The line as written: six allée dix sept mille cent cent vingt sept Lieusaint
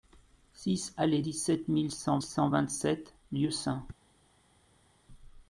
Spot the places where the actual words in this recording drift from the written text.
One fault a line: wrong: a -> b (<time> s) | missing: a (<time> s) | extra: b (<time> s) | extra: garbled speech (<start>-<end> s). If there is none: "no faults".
no faults